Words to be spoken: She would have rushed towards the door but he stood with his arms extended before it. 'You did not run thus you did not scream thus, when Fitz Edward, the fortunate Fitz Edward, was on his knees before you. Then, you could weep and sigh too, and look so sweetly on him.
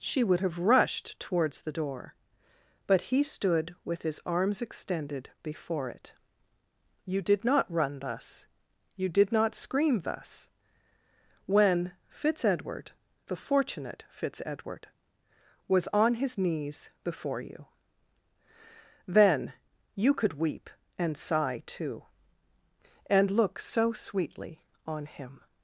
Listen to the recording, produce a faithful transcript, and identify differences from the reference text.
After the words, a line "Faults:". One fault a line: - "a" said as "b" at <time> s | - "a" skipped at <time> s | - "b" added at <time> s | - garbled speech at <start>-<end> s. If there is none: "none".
She would have rushed towards the door but he stood with his arms extended before it. 'You did not run thus you did not scream thus, when Fitz Edward, the fortunate Fitz Edward, was on his knees before you. Then, you could weep and sigh too, and look so sweetly on him.
Faults:
none